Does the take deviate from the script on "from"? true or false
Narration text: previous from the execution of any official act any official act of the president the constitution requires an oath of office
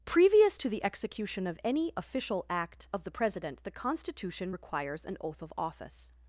true